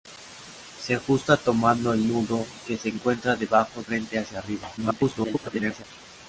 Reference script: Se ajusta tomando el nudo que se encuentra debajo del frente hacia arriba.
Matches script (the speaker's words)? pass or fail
fail